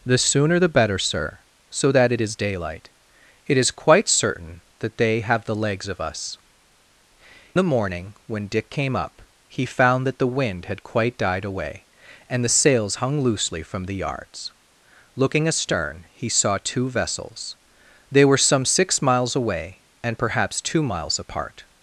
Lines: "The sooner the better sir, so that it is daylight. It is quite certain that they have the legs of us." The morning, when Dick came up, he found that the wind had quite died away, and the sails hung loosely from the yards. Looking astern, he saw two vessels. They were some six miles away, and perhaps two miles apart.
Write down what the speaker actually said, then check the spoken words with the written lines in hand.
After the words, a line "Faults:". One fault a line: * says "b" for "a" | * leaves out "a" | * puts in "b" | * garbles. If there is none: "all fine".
"The sooner the better sir, so that it is daylight. It is quite certain that they have the legs of us." The morning, when Dick came up, he found that the wind had quite died away, and the sails hung loosely from the yards. Looking astern, he saw two vessels. They were some six miles away, and perhaps two miles apart.
Faults:
all fine